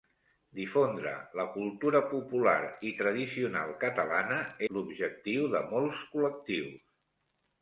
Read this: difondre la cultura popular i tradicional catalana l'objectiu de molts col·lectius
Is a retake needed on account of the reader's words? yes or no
no